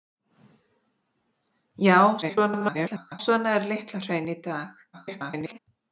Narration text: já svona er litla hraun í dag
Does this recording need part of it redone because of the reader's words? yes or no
yes